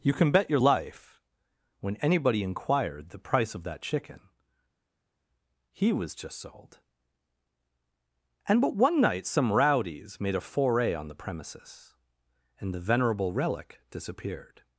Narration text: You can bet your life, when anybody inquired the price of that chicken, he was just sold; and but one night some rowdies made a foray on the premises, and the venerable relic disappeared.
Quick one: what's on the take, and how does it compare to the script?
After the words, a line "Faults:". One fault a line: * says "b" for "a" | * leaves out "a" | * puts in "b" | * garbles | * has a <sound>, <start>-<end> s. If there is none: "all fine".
You can bet your life, when anybody inquired the price of that chicken, he was just sold; and but one night some rowdies made a foray on the premises, and the venerable relic disappeared.
Faults:
all fine